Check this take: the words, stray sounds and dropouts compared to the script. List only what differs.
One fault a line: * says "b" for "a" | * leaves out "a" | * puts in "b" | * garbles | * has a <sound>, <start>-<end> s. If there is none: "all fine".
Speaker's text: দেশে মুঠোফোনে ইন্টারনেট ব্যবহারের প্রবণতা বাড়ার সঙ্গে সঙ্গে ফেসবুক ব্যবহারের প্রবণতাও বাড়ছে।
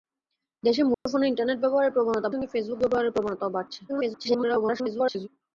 * has a dropout, 0.9-1.1 s
* leaves out "বাড়ার সঙ্গে"
* garbles